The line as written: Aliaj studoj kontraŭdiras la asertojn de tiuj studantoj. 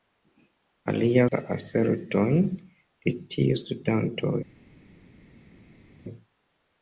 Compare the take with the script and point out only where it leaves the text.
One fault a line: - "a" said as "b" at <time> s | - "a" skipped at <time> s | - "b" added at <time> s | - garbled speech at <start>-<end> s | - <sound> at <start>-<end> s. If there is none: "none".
- "studoj kontraŭdiras" skipped at 1.2 s